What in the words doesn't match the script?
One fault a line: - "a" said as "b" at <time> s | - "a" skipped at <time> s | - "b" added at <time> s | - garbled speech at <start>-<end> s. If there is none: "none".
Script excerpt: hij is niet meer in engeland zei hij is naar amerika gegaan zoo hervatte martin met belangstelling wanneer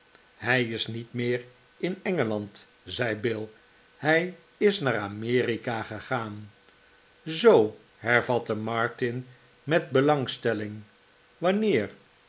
- "bill" added at 3.1 s